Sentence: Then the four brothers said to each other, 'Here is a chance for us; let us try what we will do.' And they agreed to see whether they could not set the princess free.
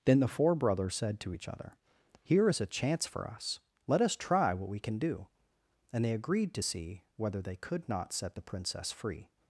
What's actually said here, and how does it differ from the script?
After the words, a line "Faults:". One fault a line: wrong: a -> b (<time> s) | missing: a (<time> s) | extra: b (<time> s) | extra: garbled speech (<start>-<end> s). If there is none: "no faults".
Then the four brothers said to each other, 'Here is a chance for us; let us try what we can do.' And they agreed to see whether they could not set the princess free.
Faults:
wrong: will -> can (4.8 s)